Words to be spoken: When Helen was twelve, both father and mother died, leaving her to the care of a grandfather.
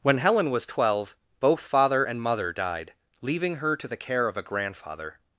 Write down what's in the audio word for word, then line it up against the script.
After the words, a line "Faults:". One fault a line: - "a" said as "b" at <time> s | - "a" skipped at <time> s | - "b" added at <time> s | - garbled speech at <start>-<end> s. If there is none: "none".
When Helen was twelve, both father and mother died, leaving her to the care of a grandfather.
Faults:
none